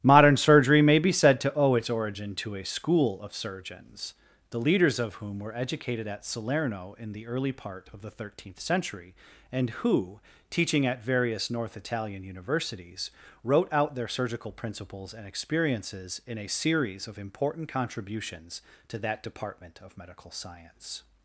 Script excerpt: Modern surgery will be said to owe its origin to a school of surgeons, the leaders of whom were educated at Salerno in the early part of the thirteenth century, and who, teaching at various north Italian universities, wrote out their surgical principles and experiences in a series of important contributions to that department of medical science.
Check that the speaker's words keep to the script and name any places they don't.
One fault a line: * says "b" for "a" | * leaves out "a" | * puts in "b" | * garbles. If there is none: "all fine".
* says "may" for "will"